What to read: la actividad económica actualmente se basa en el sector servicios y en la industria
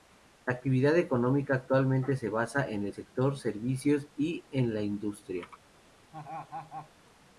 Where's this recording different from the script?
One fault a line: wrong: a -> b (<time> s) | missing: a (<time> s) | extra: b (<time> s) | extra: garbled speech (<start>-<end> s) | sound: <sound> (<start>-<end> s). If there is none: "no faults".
sound: laugh (6.1-6.9 s)